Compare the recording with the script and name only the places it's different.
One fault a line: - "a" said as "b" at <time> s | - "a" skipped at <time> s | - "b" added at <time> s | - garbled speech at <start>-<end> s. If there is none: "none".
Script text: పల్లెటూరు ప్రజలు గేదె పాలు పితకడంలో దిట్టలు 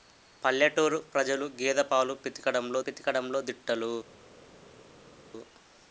- "పితకడంలో" added at 2.9 s